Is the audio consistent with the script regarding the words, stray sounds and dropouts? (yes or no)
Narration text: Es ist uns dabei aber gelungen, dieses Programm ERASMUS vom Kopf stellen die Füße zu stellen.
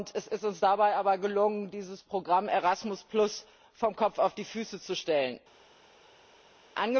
no